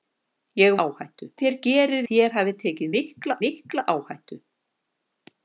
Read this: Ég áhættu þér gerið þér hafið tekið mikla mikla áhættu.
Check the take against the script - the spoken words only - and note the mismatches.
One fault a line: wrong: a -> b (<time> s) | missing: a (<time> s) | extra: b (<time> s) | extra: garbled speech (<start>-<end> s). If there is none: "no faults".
no faults